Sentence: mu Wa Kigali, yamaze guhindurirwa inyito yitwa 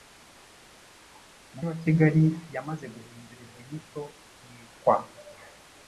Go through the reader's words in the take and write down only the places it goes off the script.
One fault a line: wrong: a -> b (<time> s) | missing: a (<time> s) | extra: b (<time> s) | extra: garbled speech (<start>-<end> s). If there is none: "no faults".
no faults